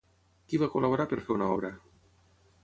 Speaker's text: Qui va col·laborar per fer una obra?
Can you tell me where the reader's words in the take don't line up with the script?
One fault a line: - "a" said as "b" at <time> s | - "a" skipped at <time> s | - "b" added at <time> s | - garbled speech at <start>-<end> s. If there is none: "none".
none